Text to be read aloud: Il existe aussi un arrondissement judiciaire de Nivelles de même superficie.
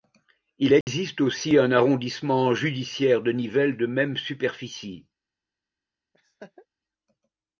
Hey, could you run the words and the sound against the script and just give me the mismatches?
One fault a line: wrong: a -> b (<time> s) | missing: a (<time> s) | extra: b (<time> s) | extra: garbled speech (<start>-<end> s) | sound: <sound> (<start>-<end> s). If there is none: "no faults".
sound: dropout (0.8-0.9 s)
sound: laugh (6.1-6.7 s)